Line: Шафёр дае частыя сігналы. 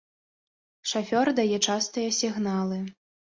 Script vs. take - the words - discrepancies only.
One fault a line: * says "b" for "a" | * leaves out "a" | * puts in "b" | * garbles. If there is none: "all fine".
all fine